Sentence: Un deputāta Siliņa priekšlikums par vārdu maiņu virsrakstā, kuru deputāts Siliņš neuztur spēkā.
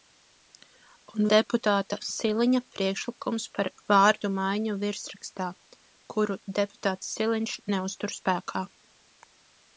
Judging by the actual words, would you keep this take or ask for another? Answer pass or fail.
pass